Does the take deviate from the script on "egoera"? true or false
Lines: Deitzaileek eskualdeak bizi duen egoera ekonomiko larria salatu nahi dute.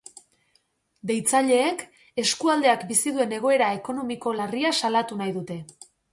false